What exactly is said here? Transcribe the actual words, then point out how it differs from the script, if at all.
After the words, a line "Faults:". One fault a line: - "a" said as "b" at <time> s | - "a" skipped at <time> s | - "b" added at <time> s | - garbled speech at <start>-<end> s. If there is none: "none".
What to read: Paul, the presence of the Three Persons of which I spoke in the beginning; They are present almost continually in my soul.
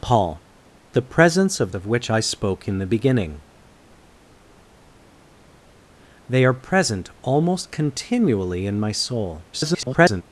Paul, the presence of of which I spoke in the beginning; They are present almost continually in my soul. [garbled]
Faults:
- "the Three Persons" skipped at 1.7 s
- garbled speech at 9.5-10.2 s